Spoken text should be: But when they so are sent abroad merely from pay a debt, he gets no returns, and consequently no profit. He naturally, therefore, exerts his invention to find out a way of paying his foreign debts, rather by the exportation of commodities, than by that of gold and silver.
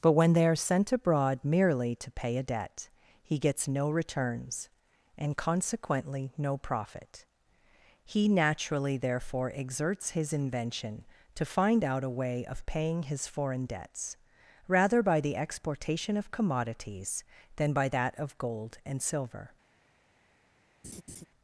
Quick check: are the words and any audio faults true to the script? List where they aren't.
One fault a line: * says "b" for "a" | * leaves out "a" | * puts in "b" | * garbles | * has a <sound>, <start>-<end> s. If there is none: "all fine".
* leaves out "so"
* says "to" for "from"
* has a laugh, 20.8-21.3 s